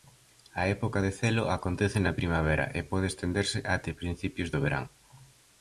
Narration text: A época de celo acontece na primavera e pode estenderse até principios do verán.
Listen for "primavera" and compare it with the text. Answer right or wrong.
right